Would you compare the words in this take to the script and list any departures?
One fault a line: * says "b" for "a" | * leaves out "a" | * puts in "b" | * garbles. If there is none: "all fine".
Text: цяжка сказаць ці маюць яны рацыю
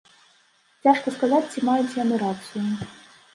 all fine